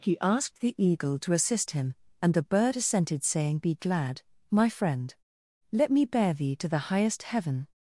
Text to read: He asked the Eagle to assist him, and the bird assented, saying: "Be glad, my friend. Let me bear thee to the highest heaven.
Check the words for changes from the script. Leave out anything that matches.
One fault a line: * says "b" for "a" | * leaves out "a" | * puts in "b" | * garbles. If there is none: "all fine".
all fine